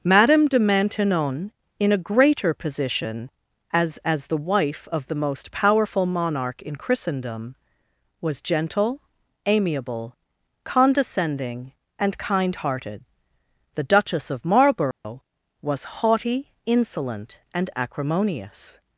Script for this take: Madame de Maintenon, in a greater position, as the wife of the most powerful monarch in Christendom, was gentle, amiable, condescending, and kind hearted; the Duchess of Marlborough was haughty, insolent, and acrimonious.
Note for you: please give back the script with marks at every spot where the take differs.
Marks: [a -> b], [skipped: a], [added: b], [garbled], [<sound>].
Madame de Maintenon, in a greater position, as [added: as] the wife of the most powerful monarch in Christendom, was gentle, amiable, condescending, and kind hearted; the Duchess of Marlborough [dropout] was haughty, insolent, and acrimonious.